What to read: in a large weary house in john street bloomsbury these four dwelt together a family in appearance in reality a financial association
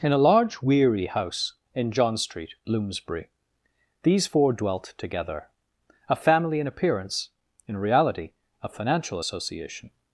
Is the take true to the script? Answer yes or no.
yes